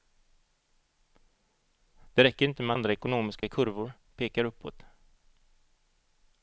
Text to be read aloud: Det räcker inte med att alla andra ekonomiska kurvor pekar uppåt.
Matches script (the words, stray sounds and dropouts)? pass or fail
fail